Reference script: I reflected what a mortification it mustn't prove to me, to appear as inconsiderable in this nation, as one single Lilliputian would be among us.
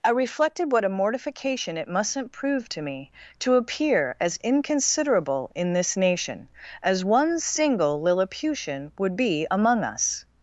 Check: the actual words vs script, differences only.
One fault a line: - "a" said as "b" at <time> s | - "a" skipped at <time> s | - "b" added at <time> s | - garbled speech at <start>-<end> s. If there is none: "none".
none